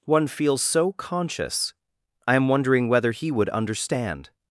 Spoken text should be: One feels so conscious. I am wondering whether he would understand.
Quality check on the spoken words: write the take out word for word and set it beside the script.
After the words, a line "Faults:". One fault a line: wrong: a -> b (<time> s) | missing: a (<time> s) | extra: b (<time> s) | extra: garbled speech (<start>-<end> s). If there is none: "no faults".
One feels so conscious. I am wondering whether he would understand.
Faults:
no faults